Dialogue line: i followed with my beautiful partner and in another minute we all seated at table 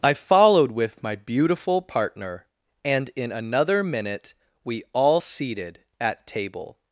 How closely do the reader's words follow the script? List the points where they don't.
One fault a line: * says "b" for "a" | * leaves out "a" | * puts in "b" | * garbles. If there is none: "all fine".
all fine